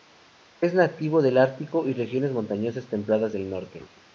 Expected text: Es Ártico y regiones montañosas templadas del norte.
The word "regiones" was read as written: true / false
true